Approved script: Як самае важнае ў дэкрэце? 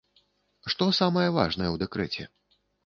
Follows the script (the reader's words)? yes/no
no